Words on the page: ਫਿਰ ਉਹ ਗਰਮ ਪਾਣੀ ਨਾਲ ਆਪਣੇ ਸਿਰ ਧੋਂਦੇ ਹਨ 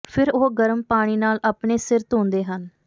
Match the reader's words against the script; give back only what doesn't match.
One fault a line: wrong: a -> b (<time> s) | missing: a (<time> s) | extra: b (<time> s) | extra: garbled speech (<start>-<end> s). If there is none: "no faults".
no faults